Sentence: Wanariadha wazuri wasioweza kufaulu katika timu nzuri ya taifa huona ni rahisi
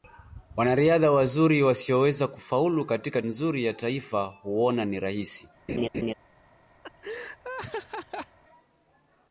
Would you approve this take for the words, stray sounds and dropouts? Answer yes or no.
no